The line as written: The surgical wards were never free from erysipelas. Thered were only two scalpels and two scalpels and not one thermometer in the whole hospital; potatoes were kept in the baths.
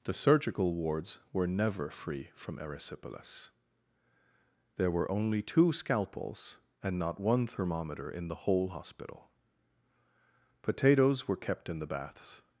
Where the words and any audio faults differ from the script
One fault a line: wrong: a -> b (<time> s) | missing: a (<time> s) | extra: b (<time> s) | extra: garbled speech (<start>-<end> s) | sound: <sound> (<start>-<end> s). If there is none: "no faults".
wrong: Thered -> There (4.8 s)
missing: two scalpels and (7.0 s)